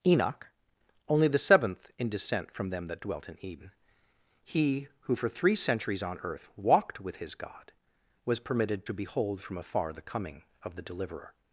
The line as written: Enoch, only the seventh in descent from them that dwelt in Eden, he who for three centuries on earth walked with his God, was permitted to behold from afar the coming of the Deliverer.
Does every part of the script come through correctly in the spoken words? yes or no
yes